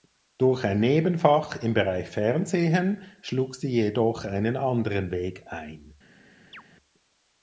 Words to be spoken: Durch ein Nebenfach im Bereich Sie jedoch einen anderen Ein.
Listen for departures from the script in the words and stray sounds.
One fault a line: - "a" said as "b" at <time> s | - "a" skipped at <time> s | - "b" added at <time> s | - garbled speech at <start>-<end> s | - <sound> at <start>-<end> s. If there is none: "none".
- "Fernsehen schlug" added at 2.1 s
- "Weg" added at 5.1 s
- chirp at 6.5-6.6 s